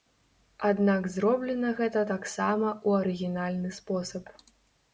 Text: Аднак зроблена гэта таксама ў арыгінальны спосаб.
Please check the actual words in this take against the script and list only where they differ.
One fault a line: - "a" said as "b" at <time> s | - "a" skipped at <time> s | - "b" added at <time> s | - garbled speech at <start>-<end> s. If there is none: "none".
none